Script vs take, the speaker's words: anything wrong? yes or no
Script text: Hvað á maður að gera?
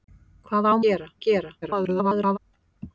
yes